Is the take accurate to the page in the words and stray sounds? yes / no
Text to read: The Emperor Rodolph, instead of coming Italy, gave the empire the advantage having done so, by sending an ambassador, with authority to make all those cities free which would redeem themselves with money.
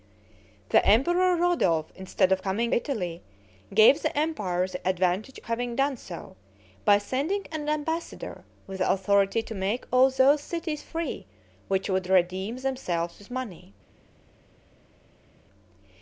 yes